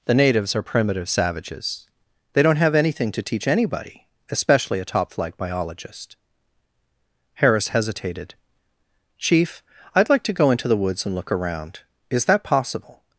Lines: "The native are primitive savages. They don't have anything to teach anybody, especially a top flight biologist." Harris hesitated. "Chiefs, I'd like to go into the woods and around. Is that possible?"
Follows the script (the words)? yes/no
no